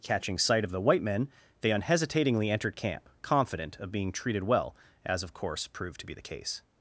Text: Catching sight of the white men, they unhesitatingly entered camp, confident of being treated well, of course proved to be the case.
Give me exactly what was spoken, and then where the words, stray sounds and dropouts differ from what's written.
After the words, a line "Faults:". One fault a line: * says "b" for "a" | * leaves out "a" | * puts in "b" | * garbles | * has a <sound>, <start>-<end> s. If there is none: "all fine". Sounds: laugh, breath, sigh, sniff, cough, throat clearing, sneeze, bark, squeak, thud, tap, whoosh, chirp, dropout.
Catching sight of the white men, they unhesitatingly entered camp, confident of being treated well, as of course proved to be the case.
Faults:
* puts in "as"